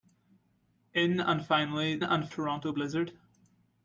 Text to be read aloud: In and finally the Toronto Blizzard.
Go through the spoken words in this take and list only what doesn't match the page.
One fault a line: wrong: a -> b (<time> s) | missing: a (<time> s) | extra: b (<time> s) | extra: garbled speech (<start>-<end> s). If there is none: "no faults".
wrong: the -> and (2.0 s)